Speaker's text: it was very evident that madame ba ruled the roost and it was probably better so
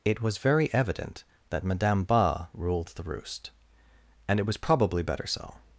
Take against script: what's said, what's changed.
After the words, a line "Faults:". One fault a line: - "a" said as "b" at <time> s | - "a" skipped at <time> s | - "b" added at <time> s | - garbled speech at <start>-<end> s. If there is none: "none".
it was very evident that madame ba ruled the roost and it was probably better so
Faults:
none